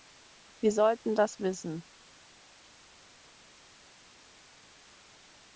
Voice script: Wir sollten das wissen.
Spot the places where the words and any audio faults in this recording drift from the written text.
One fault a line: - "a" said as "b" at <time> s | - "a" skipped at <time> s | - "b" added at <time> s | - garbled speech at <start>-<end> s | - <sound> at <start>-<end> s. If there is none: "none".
none